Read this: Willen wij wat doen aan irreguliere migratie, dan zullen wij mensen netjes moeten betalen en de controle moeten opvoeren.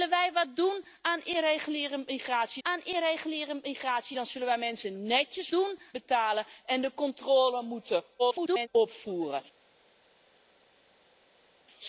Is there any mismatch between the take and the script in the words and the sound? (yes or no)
yes